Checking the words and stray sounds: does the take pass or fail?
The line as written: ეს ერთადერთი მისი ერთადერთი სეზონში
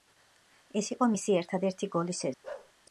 fail